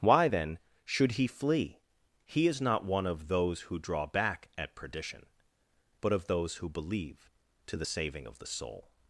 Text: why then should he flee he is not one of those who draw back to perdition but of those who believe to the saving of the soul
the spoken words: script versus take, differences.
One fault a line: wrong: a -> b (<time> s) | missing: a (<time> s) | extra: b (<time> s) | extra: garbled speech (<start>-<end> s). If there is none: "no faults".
wrong: to -> at (4.6 s)